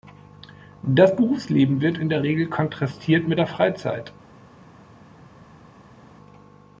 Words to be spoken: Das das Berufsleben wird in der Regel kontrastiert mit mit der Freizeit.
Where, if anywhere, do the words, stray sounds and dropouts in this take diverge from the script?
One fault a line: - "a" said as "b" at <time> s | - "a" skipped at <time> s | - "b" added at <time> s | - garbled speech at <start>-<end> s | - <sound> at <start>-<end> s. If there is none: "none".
- "das" skipped at 1.1 s
- "mit" skipped at 3.4 s